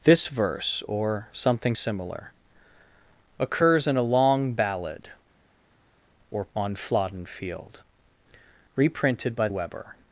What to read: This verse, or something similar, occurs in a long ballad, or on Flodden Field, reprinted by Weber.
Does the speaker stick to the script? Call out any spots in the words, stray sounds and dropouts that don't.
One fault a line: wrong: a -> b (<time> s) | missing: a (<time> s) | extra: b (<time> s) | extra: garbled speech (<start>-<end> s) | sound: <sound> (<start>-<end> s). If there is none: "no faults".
no faults